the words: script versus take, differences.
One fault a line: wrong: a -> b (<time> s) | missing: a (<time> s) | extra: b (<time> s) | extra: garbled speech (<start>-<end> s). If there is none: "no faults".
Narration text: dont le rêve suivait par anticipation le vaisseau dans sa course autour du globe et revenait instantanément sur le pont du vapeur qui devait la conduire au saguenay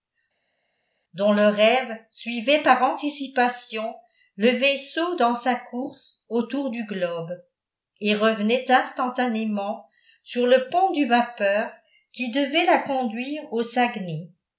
no faults